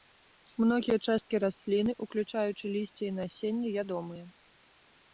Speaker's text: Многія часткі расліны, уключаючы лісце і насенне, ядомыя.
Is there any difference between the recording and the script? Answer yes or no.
no